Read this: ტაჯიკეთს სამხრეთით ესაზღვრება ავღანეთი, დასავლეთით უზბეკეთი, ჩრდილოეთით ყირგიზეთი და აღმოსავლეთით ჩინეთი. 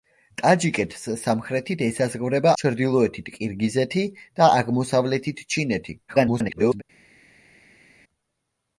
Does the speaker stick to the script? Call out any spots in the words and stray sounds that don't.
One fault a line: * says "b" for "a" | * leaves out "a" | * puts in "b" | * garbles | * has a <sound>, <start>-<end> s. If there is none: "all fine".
* leaves out "ავღანეთი დასავლეთით უზბეკეთი"
* garbles